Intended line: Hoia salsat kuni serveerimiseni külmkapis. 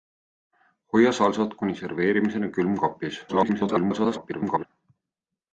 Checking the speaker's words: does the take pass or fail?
fail